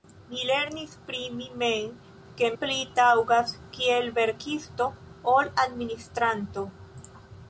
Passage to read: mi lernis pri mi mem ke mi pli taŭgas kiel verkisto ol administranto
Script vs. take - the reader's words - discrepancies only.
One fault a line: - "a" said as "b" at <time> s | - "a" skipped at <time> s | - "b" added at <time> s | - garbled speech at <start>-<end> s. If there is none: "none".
- "mi" skipped at 2.5 s